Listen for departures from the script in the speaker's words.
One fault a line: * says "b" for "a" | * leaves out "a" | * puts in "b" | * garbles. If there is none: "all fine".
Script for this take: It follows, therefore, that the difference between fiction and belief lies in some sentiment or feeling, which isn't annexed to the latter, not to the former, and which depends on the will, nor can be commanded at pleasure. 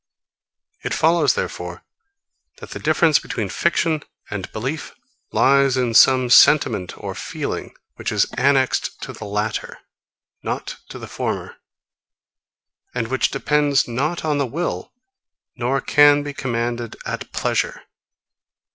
* says "is" for "isn't"
* puts in "not"